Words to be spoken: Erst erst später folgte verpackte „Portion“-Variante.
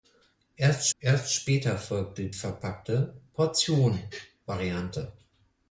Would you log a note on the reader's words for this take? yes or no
no